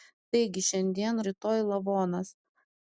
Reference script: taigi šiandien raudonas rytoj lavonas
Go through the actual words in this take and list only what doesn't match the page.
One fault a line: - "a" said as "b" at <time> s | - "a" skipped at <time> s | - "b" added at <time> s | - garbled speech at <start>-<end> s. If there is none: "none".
- "raudonas" skipped at 1.2 s